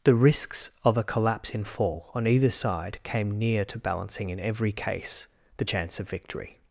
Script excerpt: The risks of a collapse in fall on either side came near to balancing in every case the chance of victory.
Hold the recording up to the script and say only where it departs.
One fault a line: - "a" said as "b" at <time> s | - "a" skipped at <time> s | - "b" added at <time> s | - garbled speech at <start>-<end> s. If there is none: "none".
none